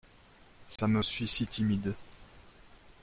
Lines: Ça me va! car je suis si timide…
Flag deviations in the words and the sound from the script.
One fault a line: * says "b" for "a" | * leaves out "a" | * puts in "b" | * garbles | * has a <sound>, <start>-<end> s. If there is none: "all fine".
* has a dropout, 0.8-0.8 s
* leaves out "va car je"